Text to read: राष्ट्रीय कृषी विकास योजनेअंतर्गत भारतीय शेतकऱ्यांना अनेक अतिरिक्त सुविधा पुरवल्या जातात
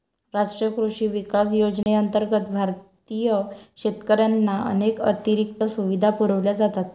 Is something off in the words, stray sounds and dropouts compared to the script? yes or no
yes